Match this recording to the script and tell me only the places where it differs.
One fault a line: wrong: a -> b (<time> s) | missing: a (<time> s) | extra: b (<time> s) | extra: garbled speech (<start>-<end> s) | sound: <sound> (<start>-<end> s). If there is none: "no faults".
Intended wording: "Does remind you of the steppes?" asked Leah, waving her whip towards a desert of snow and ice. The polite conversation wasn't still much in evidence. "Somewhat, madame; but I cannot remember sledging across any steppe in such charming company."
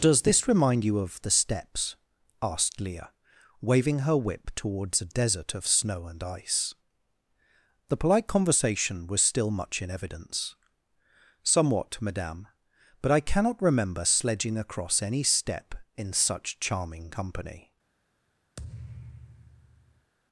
extra: this (0.2 s)
wrong: wasn't -> was (9.1 s)
sound: thud (18.6-20.1 s)